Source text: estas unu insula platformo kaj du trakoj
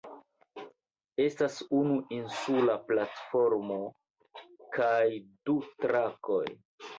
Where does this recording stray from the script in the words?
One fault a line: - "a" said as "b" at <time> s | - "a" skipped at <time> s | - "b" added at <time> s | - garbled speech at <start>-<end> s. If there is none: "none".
none